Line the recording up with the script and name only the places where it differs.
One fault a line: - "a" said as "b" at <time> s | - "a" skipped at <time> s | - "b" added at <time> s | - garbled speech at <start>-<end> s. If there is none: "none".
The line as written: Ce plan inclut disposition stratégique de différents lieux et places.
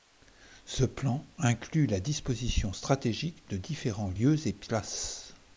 - "la" added at 1.9 s